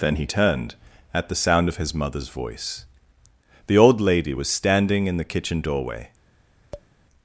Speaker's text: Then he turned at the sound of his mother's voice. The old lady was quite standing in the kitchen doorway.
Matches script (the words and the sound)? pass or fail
fail